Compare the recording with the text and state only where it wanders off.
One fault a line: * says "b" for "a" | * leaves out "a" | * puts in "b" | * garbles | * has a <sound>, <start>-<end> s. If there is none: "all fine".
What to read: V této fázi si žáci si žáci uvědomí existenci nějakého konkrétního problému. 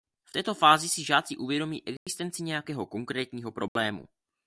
* leaves out "si žáci"
* has a dropout, 2.0-2.1 s
* has a dropout, 3.7-3.8 s